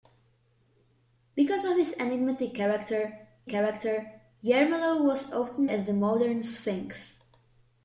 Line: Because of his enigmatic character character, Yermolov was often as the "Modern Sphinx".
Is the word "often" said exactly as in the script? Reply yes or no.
yes